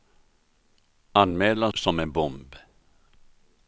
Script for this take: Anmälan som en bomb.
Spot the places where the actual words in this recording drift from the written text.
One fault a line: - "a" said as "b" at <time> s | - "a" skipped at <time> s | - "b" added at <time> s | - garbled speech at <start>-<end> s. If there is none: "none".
none